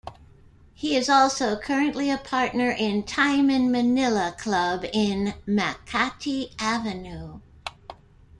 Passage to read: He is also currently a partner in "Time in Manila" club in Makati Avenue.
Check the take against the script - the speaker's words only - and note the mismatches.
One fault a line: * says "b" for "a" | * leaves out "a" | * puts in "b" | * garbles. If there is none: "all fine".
all fine